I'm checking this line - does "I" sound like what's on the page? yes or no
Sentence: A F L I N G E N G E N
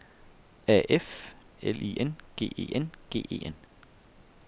yes